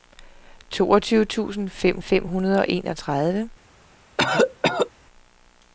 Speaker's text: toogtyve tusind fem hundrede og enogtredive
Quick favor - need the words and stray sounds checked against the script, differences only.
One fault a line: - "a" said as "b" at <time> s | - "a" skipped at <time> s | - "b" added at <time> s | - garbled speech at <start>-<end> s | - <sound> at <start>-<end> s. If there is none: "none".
- "fem" added at 2.0 s
- cough at 4.2-4.9 s